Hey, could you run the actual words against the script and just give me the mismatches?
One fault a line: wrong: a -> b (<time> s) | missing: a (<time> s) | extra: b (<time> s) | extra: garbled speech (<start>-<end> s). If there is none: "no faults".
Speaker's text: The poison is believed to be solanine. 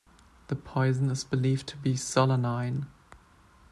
no faults